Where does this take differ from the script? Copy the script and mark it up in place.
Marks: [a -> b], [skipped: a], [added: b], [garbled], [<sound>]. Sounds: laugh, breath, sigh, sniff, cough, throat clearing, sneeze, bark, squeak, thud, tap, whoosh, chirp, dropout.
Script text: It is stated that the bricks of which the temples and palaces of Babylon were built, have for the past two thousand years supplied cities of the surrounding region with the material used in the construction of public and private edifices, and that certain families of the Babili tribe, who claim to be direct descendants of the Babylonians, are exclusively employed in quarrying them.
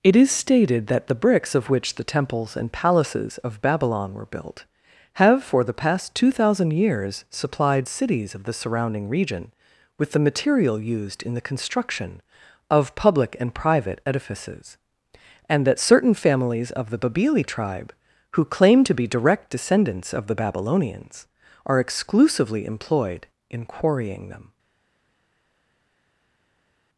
It is stated that the bricks of which the temples and palaces of Babylon were built, have for the past two thousand years supplied cities of the surrounding region with the material used in the construction of public and private edifices, and that certain families of the Babili tribe, who claim to be direct descendants of the Babylonians, are exclusively employed in quarrying them.